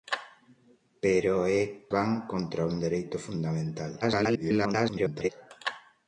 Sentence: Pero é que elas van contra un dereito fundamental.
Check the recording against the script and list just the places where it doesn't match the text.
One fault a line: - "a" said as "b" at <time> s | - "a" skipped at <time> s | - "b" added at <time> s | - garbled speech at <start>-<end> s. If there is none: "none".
- "que elas" skipped at 1.6 s
- garbled speech at 4.0-5.3 s